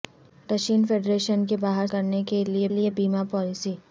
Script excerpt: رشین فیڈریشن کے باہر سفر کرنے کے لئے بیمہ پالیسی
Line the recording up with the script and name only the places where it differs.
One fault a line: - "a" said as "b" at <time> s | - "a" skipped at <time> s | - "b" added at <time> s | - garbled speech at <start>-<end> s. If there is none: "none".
- "سفر" skipped at 1.9 s
- "لئے" added at 2.7 s